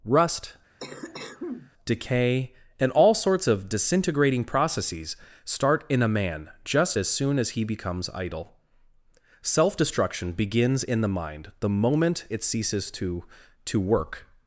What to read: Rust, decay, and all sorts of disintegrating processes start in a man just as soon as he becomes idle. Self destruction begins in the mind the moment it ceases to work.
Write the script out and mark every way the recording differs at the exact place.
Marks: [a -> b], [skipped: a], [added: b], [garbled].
Rust, decay, and all sorts of disintegrating processes start in a man just as soon as he becomes idle. Self destruction begins in the mind the moment it ceases to [added: to] work.